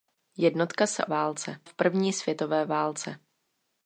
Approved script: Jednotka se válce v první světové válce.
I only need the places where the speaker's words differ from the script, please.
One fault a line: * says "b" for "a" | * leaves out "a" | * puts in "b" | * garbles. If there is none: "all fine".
all fine